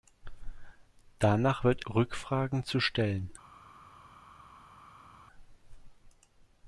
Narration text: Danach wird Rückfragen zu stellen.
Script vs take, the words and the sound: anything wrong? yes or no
no